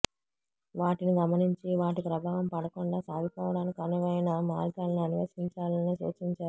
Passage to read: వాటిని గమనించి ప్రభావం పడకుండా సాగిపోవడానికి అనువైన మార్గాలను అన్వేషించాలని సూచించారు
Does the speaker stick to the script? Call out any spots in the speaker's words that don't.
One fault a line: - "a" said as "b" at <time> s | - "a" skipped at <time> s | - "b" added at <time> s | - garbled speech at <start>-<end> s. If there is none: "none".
- "వాటి" added at 1.8 s